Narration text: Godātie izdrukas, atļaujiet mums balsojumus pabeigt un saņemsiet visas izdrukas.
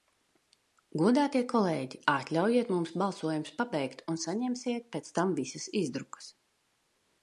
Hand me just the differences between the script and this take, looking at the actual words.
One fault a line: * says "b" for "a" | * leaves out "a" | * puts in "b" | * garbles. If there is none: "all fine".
* says "kolēģi" for "izdrukas"
* puts in "pēc tam"